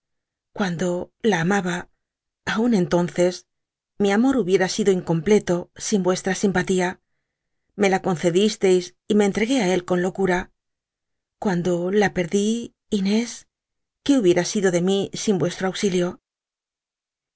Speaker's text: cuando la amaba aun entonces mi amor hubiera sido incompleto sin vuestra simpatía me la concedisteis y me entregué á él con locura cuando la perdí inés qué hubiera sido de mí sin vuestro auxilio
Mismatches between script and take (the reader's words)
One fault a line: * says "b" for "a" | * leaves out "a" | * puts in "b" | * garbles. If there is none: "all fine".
all fine